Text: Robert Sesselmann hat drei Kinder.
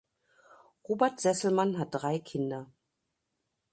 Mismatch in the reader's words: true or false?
false